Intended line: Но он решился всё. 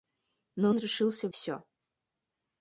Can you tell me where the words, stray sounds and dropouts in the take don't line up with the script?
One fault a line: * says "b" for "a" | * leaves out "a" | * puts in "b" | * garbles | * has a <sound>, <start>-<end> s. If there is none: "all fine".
all fine